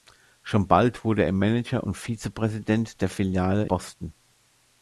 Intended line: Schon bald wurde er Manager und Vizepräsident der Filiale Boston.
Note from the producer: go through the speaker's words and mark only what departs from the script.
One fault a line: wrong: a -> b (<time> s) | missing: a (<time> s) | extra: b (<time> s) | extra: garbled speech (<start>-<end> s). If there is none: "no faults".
no faults